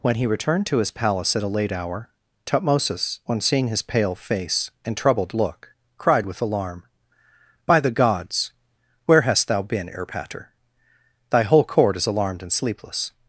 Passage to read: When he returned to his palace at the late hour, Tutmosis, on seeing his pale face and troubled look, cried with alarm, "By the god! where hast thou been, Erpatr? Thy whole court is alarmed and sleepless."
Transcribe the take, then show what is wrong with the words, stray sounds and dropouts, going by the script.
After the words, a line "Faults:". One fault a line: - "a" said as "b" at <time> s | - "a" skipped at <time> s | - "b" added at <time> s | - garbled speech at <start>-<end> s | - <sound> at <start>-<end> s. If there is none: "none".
When he returned to his palace at a late hour, Tutmosis, on seeing his pale face and troubled look, cried with alarm, "By the gods! where hast thou been, Erpatr? Thy whole court is alarmed and sleepless."
Faults:
- "the" said as "a" at 1.4 s
- "god" said as "gods" at 7.9 s